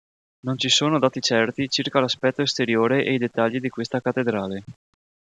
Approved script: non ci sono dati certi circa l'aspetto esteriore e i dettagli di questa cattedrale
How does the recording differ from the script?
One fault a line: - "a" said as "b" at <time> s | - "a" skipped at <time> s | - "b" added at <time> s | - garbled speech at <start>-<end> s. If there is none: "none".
none